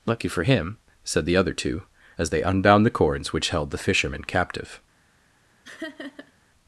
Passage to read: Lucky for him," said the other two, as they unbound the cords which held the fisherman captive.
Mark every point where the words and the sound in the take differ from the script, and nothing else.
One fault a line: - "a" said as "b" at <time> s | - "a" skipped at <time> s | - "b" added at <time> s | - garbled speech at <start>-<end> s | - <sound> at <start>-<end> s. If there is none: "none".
- laugh at 5.6-6.3 s